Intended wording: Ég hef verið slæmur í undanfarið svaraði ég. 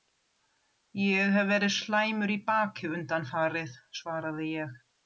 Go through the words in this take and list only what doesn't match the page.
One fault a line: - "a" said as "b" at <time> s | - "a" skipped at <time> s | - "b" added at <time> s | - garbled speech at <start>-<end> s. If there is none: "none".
- "baki" added at 2.5 s